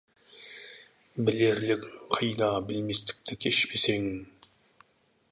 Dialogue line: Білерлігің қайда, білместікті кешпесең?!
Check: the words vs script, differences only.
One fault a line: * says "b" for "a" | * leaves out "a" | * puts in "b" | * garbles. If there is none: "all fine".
all fine